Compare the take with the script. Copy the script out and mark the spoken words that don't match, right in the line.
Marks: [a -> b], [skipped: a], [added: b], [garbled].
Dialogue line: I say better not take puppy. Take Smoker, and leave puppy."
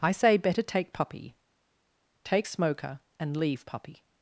I say better [skipped: not] take puppy. Take Smoker, and leave puppy."